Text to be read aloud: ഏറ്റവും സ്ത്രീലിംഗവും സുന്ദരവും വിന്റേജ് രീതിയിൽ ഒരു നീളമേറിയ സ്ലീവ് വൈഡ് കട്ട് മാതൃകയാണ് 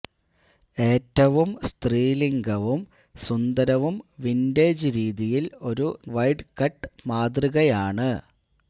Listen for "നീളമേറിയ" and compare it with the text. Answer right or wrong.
wrong